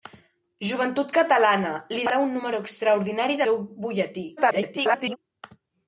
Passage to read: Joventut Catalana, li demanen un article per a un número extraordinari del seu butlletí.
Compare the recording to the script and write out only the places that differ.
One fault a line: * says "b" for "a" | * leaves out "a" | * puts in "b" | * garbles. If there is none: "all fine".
* leaves out "demanen un article"
* leaves out "del"
* garbles